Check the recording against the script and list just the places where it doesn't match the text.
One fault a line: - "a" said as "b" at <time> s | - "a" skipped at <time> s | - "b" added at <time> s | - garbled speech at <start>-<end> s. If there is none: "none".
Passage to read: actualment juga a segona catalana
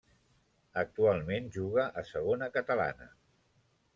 none